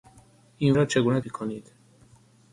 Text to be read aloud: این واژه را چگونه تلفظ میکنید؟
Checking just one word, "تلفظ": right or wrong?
wrong